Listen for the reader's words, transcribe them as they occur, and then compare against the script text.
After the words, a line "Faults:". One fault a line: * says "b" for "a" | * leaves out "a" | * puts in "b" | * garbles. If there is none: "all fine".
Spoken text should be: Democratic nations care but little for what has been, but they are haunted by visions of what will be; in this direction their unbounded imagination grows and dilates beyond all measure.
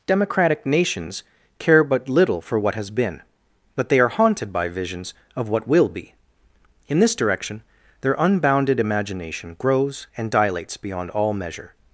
Democratic nations care but little for what has been, but they are haunted by visions of what will be; in this direction their unbounded imagination grows and dilates beyond all measure.
Faults:
all fine